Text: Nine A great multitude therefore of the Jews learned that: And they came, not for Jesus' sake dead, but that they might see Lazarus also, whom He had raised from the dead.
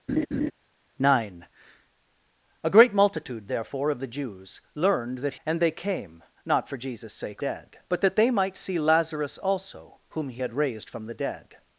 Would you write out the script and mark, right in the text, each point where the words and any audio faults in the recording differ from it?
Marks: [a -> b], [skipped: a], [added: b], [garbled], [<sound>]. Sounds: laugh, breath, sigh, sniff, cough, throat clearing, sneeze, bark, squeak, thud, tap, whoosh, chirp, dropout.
[laugh] Nine A great multitude therefore of the Jews learned that: And they came, not for Jesus' sake dead, but that they might see Lazarus also, whom He had raised from the dead.